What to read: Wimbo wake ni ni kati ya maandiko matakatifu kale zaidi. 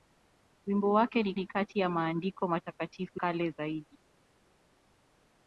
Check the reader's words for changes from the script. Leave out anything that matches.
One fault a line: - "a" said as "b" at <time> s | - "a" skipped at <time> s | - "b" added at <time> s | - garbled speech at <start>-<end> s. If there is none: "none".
none